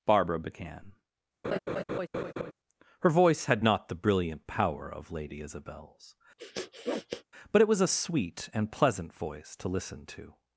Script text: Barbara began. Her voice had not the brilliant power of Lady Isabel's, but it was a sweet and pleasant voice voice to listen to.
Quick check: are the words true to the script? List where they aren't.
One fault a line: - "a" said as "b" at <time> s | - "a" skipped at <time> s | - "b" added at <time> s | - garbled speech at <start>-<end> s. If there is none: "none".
- "voice" skipped at 9.6 s